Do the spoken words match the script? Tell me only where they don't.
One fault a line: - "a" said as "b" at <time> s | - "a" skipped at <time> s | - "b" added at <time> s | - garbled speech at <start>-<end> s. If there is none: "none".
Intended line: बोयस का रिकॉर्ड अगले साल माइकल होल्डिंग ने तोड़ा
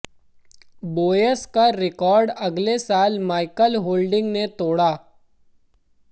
none